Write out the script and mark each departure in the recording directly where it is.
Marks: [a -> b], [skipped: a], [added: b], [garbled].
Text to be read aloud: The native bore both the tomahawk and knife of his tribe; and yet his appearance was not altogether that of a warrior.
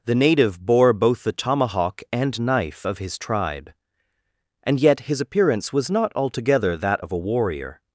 The native bore both the tomahawk and knife of his tribe; and yet his appearance was not altogether that of a warrior.